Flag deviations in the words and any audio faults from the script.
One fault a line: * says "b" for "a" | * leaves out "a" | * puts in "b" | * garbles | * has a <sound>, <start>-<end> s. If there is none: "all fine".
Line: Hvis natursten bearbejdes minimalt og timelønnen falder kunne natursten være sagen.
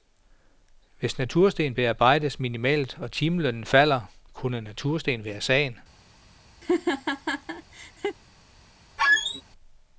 * has a laugh, 6.6-8.2 s
* has a squeak, 9.0-9.4 s